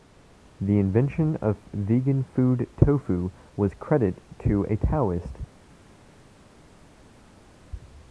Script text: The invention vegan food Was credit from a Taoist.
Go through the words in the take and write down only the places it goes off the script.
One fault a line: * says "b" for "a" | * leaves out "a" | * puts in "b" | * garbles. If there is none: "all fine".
* puts in "of"
* puts in "Tofu"
* says "to" for "from"